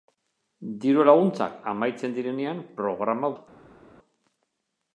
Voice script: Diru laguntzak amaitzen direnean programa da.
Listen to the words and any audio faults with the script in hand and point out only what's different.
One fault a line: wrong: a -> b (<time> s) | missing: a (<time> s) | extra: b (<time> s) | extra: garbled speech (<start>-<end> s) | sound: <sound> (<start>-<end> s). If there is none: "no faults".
no faults